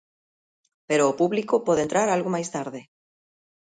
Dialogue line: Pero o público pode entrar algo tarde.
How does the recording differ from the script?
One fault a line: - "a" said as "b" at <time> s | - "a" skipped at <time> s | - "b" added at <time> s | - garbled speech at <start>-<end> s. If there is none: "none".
- "máis" added at 2.4 s